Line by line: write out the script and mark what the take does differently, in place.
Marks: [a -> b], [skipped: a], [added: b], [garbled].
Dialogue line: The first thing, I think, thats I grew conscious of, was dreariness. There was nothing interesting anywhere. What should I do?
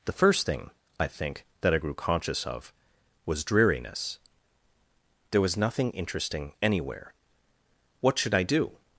The first thing, I think, [thats -> that] I grew conscious of, was dreariness. There was nothing interesting anywhere. What should I do?